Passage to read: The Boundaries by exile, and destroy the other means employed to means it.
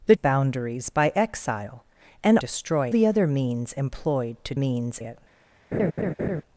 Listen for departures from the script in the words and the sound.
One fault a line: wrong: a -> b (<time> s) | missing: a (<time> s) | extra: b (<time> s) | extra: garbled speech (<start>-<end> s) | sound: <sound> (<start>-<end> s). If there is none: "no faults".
sound: laugh (5.7-6.4 s)